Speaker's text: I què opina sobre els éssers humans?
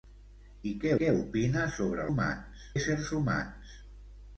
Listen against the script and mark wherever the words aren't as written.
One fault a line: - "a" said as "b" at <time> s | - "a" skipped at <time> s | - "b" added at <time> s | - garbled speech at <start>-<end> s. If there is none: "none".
- "què" added at 1.0 s
- "els" said as "humans" at 2.1 s